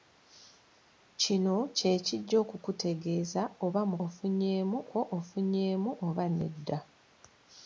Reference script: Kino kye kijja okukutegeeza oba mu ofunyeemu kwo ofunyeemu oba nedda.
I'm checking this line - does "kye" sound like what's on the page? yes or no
yes